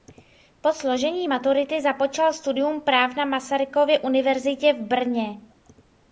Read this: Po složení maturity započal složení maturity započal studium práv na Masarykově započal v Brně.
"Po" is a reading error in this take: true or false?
false